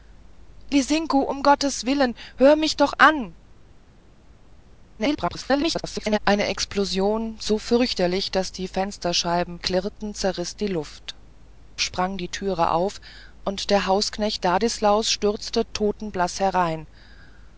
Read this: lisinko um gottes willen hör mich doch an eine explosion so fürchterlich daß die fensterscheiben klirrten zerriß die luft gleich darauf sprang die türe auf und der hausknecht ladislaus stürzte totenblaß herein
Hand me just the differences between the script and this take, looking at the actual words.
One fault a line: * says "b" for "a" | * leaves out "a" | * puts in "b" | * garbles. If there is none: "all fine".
* garbles
* leaves out "gleich darauf"